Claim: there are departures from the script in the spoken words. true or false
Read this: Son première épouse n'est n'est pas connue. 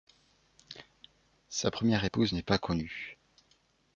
true